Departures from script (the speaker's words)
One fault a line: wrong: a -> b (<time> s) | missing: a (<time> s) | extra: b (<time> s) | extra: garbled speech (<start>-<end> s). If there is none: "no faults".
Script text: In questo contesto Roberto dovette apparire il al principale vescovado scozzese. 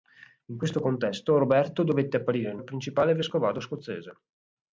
no faults